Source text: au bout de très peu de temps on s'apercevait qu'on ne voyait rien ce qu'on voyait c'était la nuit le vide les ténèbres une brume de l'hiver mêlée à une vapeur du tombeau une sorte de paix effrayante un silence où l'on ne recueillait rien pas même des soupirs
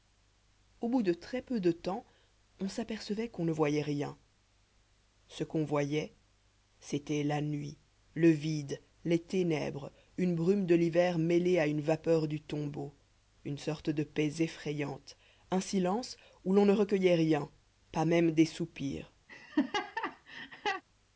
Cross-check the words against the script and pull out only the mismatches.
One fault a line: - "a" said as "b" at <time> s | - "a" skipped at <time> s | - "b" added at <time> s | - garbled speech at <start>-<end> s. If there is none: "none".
none